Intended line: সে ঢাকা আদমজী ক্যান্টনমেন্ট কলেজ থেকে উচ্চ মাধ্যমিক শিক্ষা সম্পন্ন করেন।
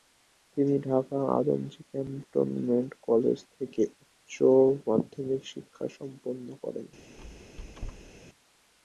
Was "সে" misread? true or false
true